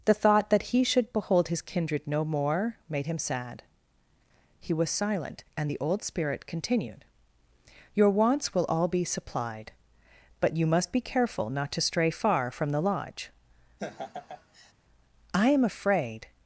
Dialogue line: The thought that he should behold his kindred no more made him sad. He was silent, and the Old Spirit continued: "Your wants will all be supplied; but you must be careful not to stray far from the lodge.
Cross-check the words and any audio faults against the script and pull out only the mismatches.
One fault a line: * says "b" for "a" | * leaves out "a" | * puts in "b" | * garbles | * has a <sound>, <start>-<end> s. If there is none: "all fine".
* has a laugh, 13.8-14.7 s
* puts in "I am afraid"